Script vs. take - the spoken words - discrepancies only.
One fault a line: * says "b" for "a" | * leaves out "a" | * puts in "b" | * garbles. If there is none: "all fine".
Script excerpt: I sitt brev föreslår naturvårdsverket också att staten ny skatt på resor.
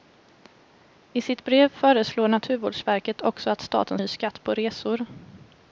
all fine